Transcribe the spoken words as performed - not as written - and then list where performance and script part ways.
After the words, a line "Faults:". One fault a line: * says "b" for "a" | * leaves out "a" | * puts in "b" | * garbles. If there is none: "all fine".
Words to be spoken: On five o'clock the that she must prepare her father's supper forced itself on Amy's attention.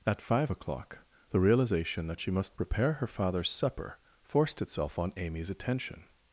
At five o'clock the realization that she must prepare her father's supper forced itself on Amy's attention.
Faults:
* says "At" for "On"
* puts in "realization"